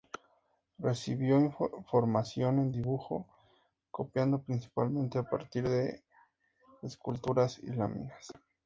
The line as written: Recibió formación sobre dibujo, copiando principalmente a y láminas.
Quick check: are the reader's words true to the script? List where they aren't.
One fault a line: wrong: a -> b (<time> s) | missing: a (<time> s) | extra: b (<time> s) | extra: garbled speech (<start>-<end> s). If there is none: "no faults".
wrong: sobre -> en (2.6 s)
extra: partir de esculturas (5.3 s)